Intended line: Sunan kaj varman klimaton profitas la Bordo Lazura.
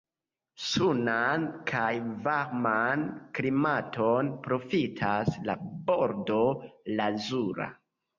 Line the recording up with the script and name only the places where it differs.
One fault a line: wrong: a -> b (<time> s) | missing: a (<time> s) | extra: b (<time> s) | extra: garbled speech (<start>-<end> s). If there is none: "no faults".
no faults